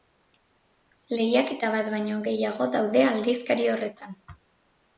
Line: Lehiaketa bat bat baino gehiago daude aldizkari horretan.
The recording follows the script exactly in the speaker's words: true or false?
false